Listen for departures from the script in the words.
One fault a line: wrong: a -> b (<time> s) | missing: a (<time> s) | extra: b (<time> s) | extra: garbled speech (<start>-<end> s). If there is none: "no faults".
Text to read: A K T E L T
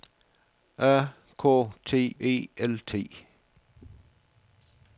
no faults